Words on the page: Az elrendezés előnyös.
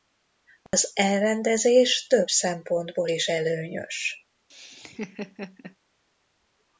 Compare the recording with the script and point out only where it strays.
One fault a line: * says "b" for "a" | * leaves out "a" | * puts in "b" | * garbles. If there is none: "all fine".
* puts in "több szempontból is"